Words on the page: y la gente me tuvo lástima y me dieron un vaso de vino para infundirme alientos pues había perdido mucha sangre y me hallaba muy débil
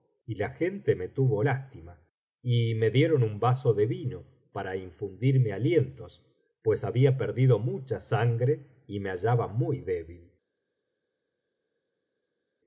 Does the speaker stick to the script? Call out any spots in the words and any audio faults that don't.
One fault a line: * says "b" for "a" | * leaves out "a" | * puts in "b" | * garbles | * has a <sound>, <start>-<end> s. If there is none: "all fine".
all fine